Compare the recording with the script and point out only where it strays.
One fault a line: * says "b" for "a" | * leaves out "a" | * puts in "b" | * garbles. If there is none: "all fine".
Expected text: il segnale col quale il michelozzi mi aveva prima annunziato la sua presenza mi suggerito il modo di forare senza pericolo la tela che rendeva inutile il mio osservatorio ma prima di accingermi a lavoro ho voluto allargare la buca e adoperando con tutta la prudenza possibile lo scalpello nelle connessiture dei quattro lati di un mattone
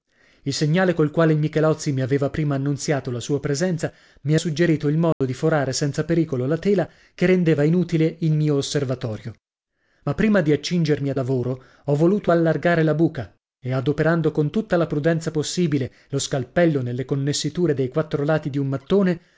all fine